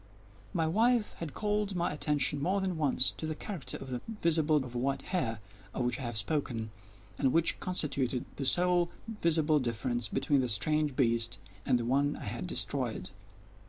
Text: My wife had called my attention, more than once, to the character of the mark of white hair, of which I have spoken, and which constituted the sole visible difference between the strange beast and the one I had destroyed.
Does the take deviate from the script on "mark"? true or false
true